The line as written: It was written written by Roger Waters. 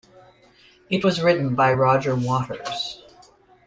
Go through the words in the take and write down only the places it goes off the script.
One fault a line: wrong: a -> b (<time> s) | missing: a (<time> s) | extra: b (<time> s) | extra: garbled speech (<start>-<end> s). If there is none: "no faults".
missing: written (1.5 s)